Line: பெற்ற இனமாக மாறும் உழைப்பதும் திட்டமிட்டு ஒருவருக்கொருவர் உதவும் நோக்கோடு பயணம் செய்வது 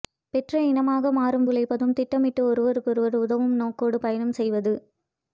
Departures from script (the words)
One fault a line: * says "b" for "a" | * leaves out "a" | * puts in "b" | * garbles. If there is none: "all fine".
all fine